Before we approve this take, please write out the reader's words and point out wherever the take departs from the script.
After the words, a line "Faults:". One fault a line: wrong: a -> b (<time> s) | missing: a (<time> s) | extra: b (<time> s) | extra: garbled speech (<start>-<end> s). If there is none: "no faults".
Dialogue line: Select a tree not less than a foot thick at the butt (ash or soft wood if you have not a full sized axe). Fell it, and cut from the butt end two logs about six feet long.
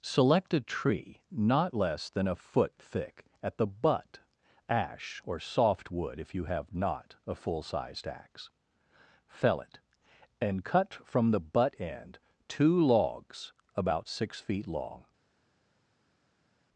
Select a tree not less than a foot thick at the butt (ash or soft wood if you have not a full sized axe). Fell it, and cut from the butt end two logs about six feet long.
Faults:
no faults